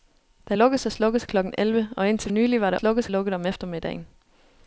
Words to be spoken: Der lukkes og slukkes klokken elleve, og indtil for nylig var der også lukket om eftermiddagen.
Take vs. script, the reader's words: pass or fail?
fail